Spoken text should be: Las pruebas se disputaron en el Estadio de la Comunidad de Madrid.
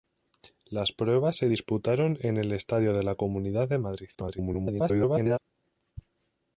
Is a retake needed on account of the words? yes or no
yes